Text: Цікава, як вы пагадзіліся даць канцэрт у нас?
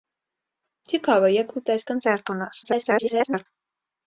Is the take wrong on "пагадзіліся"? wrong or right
wrong